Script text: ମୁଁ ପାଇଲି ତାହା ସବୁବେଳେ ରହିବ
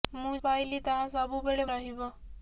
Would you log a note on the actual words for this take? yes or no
no